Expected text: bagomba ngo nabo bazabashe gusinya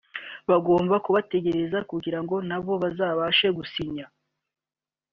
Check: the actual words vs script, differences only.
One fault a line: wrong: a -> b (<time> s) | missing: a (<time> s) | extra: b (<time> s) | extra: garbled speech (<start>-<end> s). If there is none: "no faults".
extra: kubategereza kugira (1.1 s)